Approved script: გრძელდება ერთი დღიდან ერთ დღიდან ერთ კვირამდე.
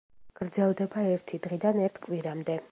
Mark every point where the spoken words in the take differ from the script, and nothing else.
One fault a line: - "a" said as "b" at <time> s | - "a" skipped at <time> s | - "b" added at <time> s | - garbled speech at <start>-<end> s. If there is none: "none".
- "დღიდან ერთ" skipped at 2.0 s